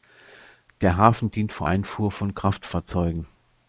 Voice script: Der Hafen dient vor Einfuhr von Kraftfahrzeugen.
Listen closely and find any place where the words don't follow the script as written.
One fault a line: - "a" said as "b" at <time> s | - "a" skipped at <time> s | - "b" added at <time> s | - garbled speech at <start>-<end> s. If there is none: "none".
none